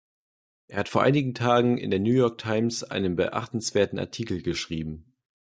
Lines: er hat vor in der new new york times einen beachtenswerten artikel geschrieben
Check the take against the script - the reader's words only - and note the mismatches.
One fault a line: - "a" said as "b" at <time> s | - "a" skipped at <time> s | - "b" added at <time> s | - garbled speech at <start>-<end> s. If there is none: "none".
- "einigen tagen" added at 1.0 s
- "new" skipped at 2.1 s